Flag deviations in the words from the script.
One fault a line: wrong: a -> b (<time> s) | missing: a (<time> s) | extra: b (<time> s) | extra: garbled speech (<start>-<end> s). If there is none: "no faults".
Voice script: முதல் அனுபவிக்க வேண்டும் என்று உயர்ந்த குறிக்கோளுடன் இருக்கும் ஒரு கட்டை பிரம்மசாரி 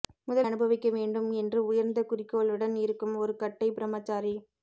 no faults